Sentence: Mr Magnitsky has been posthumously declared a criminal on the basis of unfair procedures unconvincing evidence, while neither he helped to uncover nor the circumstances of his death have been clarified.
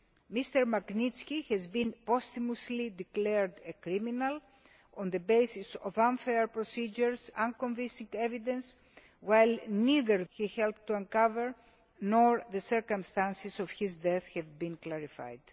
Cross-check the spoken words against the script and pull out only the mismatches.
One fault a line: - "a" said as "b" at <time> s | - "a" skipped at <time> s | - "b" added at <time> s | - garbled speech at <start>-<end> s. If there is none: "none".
none